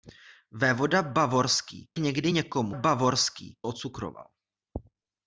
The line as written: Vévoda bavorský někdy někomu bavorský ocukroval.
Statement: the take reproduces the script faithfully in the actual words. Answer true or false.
true